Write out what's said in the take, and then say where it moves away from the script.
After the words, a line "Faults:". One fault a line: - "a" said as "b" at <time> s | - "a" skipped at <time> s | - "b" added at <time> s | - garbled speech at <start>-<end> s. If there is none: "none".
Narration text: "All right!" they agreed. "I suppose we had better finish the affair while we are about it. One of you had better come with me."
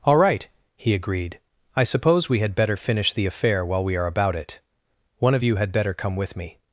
"All right!" he agreed. "I suppose we had better finish the affair while we are about it. One of you had better come with me."
Faults:
- "they" said as "he" at 0.8 s